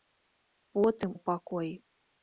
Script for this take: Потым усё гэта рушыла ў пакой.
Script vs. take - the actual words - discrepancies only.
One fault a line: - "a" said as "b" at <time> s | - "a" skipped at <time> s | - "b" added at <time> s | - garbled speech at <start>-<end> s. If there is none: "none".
- "усё гэта рушыла" skipped at 1.1 s